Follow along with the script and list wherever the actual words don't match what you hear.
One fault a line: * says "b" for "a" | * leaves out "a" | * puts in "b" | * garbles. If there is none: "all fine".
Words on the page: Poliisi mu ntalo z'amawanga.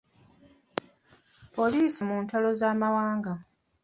all fine